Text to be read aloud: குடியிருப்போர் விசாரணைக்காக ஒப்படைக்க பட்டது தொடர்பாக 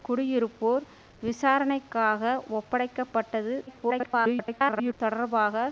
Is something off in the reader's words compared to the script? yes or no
yes